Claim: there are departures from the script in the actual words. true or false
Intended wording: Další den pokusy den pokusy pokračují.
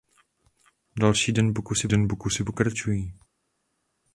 false